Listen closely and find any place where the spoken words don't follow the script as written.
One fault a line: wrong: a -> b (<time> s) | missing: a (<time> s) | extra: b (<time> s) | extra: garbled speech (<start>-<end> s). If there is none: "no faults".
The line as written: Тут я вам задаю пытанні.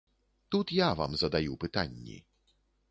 no faults